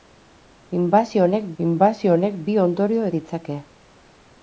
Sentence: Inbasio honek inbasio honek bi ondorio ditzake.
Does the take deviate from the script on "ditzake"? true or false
false